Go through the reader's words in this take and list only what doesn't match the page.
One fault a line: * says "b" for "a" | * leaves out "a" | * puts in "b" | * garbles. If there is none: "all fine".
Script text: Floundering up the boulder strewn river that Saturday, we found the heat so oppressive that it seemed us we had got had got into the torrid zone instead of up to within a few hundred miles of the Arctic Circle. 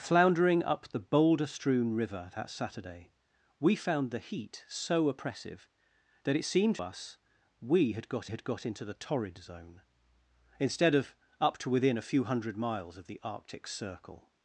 all fine